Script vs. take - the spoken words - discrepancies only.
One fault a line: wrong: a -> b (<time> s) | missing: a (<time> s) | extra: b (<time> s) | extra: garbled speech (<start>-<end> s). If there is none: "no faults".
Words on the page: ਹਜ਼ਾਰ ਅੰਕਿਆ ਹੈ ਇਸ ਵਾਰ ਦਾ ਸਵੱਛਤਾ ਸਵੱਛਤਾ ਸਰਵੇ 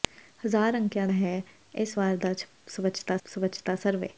no faults